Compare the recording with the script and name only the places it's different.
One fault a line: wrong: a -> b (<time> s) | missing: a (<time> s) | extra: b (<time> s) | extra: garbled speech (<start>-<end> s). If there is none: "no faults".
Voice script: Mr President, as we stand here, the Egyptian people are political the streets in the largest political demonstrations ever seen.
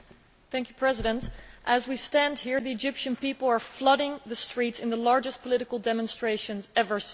wrong: political -> flooding (3.6 s)